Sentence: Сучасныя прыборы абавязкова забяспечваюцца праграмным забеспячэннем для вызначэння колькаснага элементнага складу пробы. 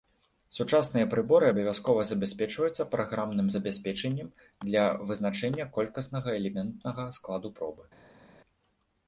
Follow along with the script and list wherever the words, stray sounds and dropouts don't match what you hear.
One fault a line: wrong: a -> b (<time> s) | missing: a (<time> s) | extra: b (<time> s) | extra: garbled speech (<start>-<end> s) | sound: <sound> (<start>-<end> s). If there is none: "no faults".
no faults